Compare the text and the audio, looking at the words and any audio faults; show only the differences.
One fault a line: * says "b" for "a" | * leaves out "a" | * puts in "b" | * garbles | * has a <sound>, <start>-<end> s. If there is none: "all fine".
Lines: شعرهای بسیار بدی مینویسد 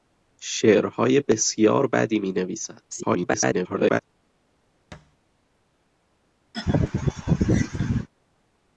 * garbles
* has a thud, 4.9-5.2 s
* has a laugh, 6.5-8.1 s